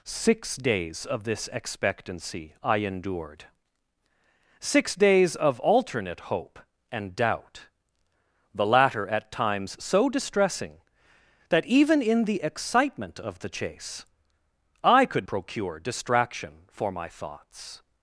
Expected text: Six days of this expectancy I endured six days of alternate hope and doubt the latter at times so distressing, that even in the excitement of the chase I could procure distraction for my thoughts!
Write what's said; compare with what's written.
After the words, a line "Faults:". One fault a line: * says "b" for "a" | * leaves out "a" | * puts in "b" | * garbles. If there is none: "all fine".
Six days of this expectancy I endured six days of alternate hope and doubt the latter at times so distressing, that even in the excitement of the chase I could procure distraction for my thoughts!
Faults:
all fine